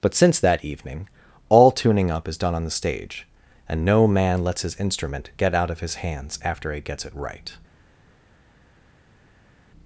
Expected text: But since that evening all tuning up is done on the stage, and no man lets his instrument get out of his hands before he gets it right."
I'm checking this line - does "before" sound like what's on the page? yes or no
no